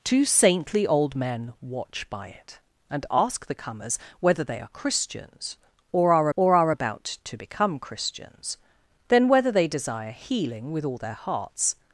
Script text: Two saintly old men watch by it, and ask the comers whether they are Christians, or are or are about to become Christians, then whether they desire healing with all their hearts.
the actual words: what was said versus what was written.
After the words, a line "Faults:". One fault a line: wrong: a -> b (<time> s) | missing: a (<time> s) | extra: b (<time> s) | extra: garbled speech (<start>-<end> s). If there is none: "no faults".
Two saintly old men watch by it, and ask the comers whether they are Christians, or are or are about to become Christians, then whether they desire healing with all their hearts.
Faults:
no faults